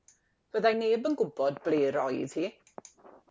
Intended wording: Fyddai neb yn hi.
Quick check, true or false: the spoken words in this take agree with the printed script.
false